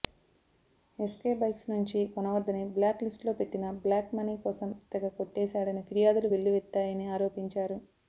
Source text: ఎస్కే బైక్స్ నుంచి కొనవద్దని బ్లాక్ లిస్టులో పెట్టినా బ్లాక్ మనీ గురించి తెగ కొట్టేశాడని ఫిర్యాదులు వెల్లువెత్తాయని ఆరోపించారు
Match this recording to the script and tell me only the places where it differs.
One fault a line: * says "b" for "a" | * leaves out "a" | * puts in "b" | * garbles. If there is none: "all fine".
* says "కోసం" for "గురించి"